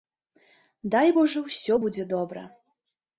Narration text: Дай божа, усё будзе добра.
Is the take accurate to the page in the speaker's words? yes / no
yes